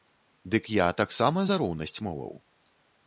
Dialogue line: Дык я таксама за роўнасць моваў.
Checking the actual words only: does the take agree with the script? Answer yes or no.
yes